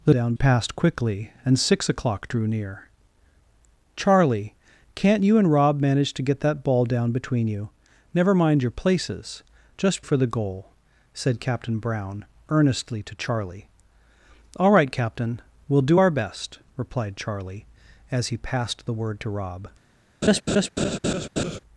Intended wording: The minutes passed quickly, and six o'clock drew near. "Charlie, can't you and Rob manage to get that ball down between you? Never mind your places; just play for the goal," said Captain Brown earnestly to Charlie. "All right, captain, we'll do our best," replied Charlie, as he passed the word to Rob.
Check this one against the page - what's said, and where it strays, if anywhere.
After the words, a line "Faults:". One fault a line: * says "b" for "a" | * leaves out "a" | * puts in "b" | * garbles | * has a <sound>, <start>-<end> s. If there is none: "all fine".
The down passed quickly, and six o'clock drew near. "Charlie, can't you and Rob manage to get that ball down between you? Never mind your places; just for the goal," said Captain Brown earnestly to Charlie. "All right, captain, we'll do our best," replied Charlie, as he passed the word to Rob.
Faults:
* says "down" for "minutes"
* leaves out "play"
* has a laugh, 20.2-21.6 s